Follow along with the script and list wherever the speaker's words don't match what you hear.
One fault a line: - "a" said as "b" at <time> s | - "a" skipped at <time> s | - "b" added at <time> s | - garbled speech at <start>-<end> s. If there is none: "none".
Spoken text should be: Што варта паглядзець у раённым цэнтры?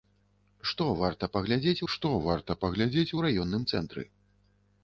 - "што варта паглядзець" added at 1.9 s